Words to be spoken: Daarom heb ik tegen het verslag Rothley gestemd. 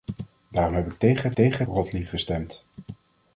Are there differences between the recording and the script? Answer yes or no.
yes